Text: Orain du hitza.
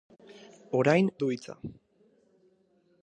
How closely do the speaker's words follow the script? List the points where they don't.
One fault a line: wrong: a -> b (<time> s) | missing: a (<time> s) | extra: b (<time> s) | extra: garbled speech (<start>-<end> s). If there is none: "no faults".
no faults